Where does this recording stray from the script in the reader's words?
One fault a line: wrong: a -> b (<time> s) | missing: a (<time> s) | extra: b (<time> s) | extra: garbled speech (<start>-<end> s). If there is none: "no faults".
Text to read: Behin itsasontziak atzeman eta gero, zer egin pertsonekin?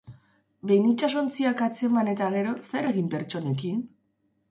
no faults